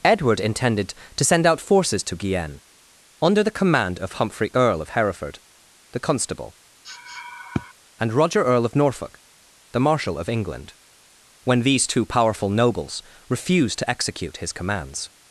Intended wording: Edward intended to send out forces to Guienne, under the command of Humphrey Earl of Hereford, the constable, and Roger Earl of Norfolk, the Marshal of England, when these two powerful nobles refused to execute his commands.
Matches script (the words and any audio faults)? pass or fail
fail